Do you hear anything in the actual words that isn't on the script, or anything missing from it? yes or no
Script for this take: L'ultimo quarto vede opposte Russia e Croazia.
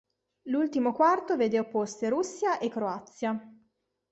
no